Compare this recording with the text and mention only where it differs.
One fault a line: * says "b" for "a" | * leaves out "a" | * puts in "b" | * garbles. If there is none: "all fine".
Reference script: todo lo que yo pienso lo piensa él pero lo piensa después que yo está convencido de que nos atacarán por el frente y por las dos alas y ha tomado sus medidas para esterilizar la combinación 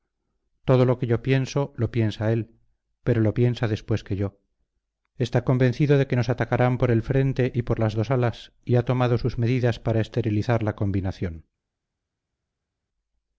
all fine